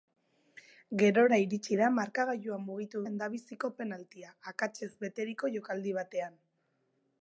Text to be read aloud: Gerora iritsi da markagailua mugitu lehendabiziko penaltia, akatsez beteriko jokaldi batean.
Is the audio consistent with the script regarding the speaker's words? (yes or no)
yes